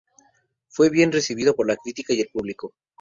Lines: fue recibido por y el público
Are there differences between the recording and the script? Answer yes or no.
yes